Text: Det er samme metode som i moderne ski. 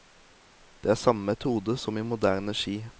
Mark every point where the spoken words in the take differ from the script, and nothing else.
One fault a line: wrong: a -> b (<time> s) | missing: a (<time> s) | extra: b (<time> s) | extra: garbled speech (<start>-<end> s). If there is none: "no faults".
no faults